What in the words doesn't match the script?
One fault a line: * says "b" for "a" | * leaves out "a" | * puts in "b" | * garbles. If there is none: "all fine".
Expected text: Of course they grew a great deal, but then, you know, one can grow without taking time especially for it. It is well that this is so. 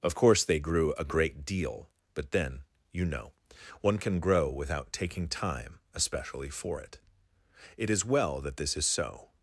all fine